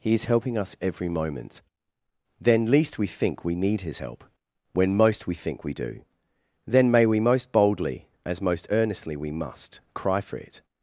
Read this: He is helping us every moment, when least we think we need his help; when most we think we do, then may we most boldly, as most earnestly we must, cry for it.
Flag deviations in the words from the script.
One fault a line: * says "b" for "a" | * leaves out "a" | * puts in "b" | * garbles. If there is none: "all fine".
* says "then" for "when"